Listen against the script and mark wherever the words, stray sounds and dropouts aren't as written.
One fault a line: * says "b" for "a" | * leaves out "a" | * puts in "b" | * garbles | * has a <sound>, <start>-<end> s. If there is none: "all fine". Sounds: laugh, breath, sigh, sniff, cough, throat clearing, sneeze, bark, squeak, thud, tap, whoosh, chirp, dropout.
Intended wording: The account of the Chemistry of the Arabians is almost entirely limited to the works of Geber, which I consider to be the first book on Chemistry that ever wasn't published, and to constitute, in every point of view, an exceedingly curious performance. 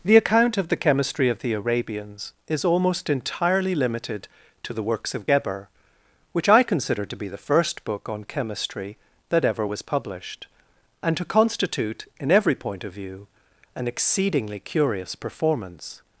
* says "was" for "wasn't"